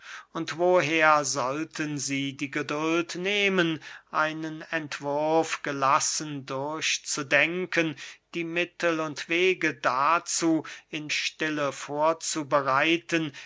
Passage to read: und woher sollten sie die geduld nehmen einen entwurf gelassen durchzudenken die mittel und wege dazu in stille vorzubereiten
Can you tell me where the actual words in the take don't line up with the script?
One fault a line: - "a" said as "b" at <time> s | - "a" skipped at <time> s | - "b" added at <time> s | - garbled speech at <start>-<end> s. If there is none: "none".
none